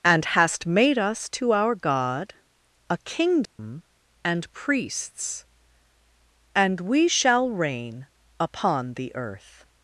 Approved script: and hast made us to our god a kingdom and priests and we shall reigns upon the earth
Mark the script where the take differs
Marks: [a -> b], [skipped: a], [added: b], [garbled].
and hast made us to our god a kingdom and priests and we shall [reigns -> reign] upon the earth